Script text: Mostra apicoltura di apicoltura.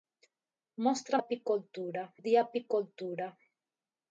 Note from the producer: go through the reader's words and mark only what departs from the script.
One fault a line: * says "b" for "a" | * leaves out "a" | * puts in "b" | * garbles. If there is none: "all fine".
all fine